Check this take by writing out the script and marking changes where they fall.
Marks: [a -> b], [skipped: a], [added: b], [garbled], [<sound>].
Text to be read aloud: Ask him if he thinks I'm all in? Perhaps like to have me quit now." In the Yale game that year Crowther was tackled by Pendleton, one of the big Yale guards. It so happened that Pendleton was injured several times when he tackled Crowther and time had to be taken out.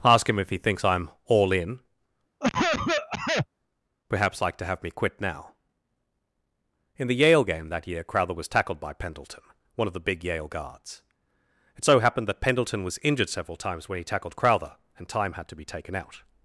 Ask him if he thinks I'm all in? [cough] Perhaps like to have me quit now." In the Yale game that year Crowther was tackled by Pendleton, one of the big Yale guards. It so happened that Pendleton was injured several times when he tackled Crowther and time had to be taken out.